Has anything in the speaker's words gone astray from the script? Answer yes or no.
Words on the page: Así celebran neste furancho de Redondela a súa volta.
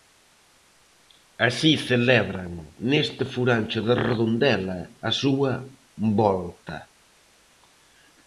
no